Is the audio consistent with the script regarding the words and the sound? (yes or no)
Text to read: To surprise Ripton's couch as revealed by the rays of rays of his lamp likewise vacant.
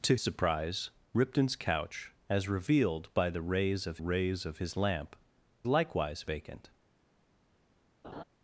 no